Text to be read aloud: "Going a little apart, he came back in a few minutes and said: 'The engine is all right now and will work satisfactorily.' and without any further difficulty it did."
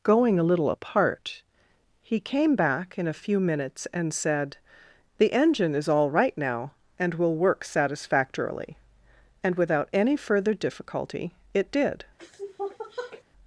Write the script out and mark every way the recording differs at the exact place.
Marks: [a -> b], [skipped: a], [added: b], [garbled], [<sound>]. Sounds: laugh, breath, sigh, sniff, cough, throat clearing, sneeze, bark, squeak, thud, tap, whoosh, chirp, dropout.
"Going a little apart, he came back in a few minutes and said: 'The engine is all right now and will work satisfactorily.' and without any further difficulty it did." [sniff]